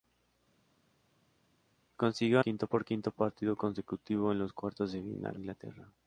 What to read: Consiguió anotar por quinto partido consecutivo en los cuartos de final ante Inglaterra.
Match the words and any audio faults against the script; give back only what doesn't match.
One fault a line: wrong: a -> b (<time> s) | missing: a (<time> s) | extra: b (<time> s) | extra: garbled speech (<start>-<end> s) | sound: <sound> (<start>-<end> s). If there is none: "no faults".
wrong: anotar -> quinto (2.4 s)
missing: ante (5.4 s)